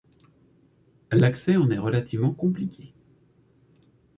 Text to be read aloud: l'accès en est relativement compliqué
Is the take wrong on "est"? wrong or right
right